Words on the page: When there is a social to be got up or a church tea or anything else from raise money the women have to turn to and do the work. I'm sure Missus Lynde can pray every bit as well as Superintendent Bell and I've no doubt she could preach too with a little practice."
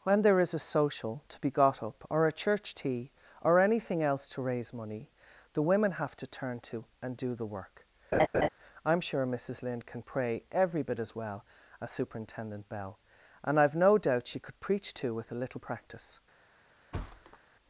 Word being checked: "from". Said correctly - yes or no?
no